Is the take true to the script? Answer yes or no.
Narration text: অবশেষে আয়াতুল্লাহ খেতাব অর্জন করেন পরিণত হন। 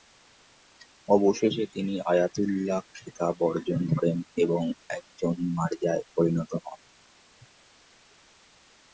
no